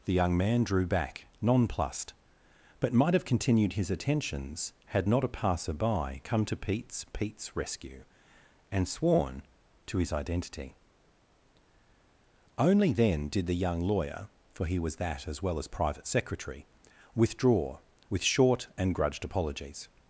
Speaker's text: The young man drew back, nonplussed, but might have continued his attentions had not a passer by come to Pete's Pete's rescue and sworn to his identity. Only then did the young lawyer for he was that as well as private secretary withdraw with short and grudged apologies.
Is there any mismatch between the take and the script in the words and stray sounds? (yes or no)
no